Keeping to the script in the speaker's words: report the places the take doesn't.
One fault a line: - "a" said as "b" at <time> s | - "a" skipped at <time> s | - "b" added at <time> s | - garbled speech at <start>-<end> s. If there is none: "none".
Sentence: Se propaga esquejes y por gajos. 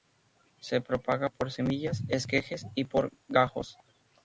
- "por semillas" added at 1.3 s